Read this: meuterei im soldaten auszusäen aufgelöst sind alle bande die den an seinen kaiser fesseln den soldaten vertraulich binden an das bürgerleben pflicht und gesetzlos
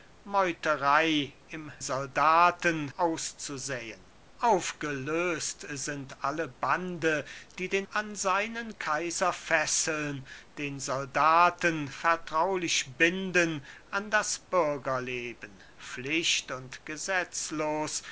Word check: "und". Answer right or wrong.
right